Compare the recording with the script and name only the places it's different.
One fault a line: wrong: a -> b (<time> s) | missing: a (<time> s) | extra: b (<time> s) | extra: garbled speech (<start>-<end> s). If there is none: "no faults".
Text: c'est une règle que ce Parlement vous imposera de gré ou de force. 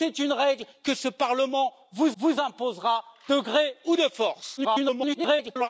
extra: vous (2.2 s)
extra: garbled speech (4.6-5.7 s)